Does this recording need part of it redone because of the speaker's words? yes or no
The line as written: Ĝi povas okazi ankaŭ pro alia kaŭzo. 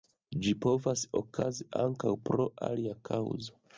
no